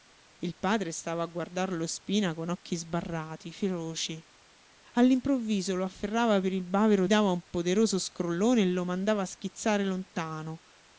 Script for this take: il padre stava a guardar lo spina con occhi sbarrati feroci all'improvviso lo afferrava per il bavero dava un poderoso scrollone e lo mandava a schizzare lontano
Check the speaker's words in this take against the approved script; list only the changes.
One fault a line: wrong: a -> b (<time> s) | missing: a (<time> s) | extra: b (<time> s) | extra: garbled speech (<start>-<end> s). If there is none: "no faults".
no faults